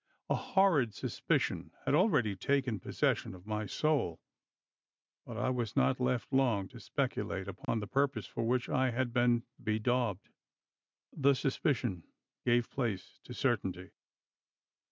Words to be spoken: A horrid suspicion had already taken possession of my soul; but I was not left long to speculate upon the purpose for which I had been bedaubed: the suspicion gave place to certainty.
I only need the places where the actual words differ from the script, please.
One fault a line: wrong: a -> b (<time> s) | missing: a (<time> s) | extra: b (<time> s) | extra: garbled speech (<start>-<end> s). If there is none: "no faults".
no faults